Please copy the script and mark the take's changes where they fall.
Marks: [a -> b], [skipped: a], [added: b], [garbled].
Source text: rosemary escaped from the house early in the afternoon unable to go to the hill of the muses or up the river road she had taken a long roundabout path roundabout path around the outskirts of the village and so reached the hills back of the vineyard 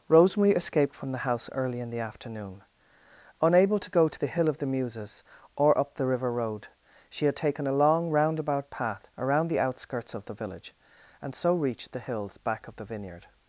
rosemary escaped from the house early in the afternoon unable to go to the hill of the muses or up the river road she had taken a long roundabout path [skipped: roundabout path] around the outskirts of the village and so reached the hills back of the vineyard